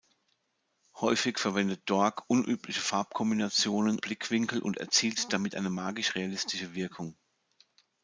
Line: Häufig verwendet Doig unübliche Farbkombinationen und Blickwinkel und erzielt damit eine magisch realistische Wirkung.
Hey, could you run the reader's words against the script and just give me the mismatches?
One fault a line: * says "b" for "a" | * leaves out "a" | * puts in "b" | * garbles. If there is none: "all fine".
* leaves out "und"